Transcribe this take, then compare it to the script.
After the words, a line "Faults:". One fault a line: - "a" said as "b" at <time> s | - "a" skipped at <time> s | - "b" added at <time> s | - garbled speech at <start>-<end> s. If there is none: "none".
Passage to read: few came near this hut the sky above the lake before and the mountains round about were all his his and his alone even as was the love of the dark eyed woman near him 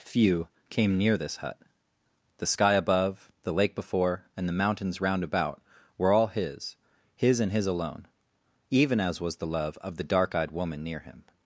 few came near this hut the sky above the lake before and the mountains round about were all his his and his alone even as was the love of the dark eyed woman near him
Faults:
none